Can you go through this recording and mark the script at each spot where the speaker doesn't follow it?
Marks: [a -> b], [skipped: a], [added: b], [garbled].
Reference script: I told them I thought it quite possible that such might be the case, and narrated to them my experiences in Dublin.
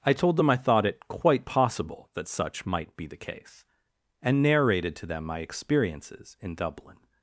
I told them I thought it quite possible that such might be the case, and narrated to them my experiences in Dublin.